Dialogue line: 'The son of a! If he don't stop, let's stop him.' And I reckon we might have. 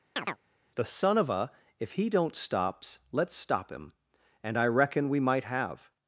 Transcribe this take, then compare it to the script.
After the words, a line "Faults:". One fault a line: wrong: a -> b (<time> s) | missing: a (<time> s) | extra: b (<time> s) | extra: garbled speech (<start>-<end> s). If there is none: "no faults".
'The son of a! If he don't stops, let's stop him.' And I reckon we might have.
Faults:
wrong: stop -> stops (2.4 s)